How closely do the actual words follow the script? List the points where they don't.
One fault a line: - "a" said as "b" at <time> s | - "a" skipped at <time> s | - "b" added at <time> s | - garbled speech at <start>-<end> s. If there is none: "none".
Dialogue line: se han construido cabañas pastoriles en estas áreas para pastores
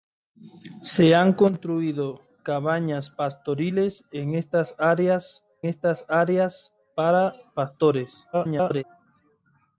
- "estas áreas" added at 5.6 s
- garbled speech at 8.3-8.8 s